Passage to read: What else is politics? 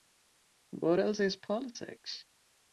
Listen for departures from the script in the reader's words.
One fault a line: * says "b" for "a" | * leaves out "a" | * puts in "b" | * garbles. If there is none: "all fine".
all fine